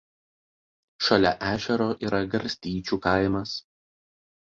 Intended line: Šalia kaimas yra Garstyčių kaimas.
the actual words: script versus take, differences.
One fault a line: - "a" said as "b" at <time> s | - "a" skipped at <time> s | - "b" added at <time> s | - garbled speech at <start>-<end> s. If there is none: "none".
- "kaimas" said as "ežero" at 1.5 s